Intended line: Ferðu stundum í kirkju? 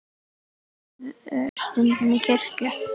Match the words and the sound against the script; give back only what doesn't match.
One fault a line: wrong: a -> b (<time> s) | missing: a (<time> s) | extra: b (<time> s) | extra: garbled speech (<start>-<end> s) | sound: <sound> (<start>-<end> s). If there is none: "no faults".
sound: dropout (1.5-1.6 s)